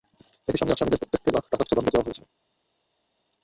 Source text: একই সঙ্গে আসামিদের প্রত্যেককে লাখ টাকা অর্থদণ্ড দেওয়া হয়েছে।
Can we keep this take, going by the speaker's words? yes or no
yes